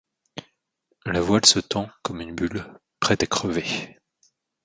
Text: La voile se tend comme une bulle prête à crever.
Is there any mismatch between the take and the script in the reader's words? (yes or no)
no